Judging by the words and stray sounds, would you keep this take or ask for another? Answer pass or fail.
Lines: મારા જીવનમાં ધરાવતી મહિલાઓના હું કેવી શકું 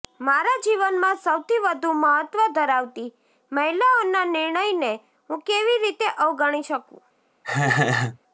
fail